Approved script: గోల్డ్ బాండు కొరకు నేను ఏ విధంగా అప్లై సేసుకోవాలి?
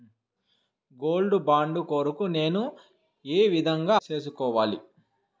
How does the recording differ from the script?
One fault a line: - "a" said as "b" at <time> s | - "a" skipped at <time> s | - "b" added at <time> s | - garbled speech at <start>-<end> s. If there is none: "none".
- "అప్లై" skipped at 4.0 s